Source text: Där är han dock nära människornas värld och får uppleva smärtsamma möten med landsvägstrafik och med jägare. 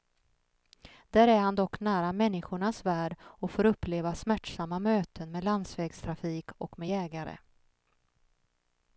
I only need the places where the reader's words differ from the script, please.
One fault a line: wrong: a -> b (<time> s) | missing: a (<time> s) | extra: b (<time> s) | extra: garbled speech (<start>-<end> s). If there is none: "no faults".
no faults